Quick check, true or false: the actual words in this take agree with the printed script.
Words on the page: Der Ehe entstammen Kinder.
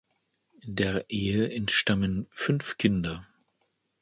false